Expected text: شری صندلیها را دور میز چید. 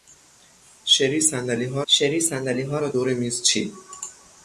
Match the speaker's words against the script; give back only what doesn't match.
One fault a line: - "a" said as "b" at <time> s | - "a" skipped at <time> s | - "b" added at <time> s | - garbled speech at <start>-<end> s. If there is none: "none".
- "شری صندلیها" added at 1.9 s